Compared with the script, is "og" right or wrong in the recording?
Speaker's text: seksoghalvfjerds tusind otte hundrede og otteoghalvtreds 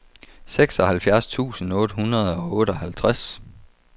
right